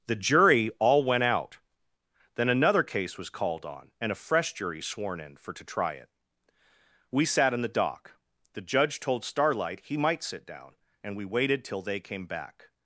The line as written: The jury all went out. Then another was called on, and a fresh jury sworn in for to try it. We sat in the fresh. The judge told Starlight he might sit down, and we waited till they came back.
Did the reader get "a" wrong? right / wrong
right